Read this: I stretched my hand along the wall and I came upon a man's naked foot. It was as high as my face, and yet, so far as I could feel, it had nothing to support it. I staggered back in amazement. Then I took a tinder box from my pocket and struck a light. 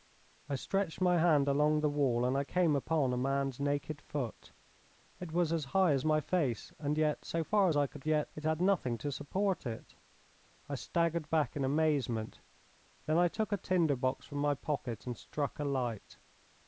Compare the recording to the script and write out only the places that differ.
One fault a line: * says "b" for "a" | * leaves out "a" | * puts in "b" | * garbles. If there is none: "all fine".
* says "yet" for "feel"